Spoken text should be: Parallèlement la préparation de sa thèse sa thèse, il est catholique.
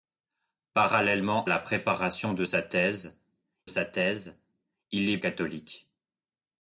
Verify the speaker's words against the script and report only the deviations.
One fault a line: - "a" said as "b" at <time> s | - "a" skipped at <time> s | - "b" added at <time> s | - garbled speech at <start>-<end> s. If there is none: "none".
none